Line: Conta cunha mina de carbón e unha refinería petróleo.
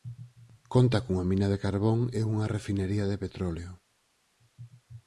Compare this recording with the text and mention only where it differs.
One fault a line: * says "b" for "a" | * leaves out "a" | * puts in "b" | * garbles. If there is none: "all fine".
* puts in "de"